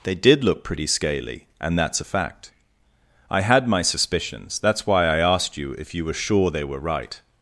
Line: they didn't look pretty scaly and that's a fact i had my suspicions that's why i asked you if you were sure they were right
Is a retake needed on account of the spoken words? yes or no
yes